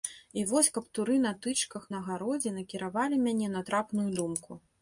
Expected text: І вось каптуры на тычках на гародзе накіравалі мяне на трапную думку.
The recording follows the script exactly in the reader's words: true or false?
true